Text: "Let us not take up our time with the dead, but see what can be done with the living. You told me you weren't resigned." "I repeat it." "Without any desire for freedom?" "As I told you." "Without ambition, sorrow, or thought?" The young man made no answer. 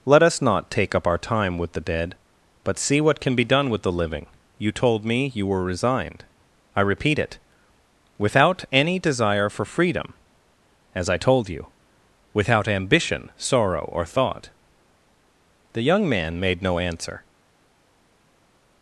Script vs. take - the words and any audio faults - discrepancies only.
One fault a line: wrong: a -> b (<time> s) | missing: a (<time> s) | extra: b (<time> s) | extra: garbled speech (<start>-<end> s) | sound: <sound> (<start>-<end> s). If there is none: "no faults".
wrong: weren't -> were (5.5 s)